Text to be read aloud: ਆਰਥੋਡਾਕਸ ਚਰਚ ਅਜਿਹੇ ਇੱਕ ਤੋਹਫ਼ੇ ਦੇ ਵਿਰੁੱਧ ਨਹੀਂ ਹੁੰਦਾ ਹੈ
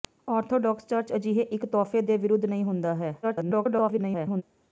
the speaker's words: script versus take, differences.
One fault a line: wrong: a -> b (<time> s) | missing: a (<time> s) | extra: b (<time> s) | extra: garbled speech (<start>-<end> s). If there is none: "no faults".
extra: garbled speech (3.2-4.4 s)